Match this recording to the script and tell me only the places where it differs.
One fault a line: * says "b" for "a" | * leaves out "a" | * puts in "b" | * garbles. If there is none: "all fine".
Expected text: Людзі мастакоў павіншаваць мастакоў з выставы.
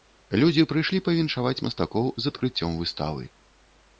* says "прыйшлі" for "мастакоў"
* puts in "адкрыццём"